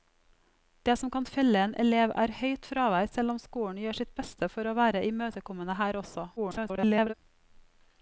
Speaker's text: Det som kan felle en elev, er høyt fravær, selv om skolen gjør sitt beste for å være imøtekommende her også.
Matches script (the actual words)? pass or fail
fail